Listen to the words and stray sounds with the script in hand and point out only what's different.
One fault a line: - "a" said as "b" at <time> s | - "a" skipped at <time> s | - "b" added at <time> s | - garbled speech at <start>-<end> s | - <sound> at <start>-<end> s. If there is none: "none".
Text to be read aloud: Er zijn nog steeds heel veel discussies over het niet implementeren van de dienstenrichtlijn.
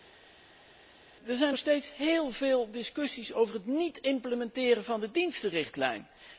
none